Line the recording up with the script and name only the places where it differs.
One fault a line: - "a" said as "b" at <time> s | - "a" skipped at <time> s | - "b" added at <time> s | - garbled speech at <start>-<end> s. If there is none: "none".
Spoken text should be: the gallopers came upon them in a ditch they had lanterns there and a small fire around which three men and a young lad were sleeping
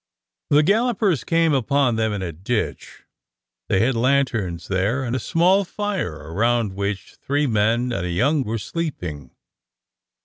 - "lad" skipped at 8.4 s